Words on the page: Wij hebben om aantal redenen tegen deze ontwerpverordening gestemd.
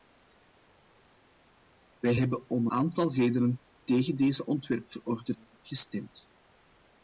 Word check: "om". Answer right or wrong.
right